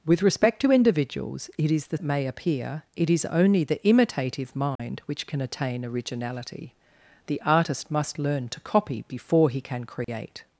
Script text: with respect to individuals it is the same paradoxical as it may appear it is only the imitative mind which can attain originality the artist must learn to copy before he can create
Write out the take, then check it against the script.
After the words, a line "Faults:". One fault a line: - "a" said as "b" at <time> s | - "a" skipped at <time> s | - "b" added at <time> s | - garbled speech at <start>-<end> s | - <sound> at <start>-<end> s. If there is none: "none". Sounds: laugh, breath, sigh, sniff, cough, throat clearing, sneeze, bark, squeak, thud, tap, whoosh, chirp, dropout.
with respect to individuals it is the it may appear it is only the imitative mind which can attain originality the artist must learn to copy before he can create
Faults:
- "same paradoxical as" skipped at 2.0 s
- dropout at 4.8-4.8 s
- dropout at 10.0-10.1 s